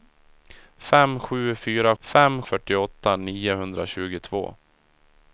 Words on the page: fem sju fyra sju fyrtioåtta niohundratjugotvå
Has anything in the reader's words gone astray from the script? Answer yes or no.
yes